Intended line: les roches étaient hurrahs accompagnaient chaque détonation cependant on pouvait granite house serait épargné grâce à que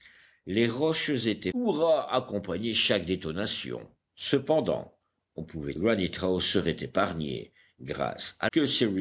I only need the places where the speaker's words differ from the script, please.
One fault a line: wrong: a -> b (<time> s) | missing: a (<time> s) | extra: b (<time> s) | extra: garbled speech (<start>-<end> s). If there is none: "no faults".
no faults